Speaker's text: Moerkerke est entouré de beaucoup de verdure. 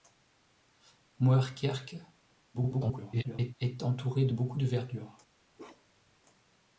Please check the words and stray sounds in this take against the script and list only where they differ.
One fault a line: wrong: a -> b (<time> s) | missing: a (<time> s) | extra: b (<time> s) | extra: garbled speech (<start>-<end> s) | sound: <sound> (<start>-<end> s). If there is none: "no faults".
extra: garbled speech (2.5-3.5 s)
sound: bark (5.6-6.2 s)